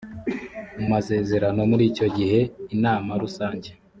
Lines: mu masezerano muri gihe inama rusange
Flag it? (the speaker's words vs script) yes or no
yes